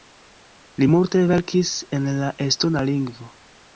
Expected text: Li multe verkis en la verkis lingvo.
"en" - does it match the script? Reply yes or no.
yes